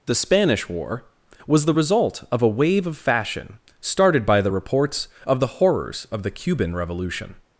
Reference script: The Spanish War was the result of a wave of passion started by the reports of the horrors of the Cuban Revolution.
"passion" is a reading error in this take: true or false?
true